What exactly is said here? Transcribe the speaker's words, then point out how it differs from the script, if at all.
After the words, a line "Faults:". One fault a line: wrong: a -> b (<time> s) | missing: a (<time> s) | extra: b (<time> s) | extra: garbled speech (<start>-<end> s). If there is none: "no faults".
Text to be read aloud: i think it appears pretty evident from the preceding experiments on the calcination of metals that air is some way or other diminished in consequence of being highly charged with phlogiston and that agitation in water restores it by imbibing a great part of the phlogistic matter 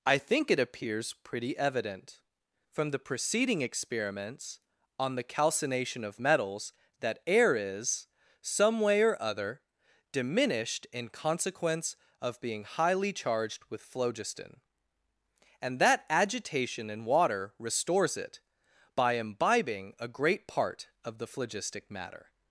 i think it appears pretty evident from the preceding experiments on the calcination of metals that air is some way or other diminished in consequence of being highly charged with phlogiston and that agitation in water restores it by imbibing a great part of the phlogistic matter
Faults:
no faults